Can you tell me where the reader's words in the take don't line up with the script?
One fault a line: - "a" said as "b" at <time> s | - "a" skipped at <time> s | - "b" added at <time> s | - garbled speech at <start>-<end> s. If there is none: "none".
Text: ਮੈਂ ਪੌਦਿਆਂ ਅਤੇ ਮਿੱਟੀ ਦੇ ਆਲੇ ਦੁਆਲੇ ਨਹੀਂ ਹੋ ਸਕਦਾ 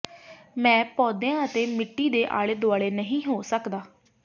none